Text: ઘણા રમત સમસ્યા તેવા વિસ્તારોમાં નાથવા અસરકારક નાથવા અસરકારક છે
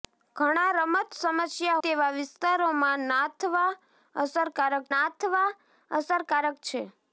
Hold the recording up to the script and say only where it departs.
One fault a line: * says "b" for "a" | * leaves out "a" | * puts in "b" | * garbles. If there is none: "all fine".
all fine